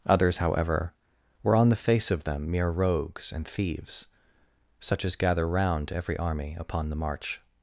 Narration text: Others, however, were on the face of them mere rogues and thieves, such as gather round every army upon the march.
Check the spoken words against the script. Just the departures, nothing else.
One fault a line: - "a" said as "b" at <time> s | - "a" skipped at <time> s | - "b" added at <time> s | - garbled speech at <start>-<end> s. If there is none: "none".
none